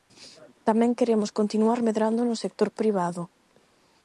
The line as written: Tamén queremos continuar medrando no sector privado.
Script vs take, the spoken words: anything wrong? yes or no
no